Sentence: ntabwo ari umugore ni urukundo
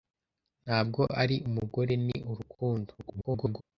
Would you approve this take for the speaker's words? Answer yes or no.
no